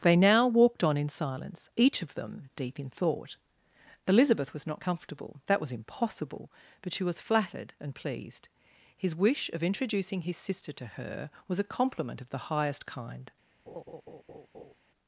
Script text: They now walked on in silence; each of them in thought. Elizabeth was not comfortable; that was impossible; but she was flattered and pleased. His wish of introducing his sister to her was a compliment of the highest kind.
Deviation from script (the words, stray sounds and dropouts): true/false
true